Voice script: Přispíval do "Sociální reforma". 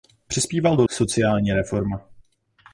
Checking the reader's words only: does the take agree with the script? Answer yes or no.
yes